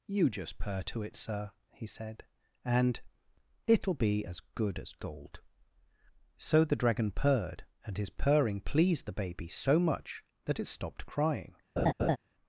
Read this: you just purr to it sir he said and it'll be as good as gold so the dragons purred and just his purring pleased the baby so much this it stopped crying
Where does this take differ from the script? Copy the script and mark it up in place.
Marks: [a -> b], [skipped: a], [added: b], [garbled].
you just purr to it sir he said and it'll be as good as gold so the [dragons -> dragon] purred and [skipped: just] his purring pleased the baby so much [this -> that] it stopped crying